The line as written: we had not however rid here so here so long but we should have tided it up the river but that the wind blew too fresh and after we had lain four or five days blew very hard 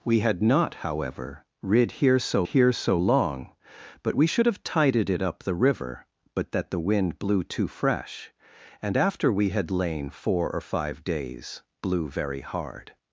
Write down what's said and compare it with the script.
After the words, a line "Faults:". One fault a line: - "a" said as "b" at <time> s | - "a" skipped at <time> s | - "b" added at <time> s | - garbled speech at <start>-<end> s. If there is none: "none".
we had not however rid here so here so long but we should have tided it up the river but that the wind blew too fresh and after we had lain four or five days blew very hard
Faults:
none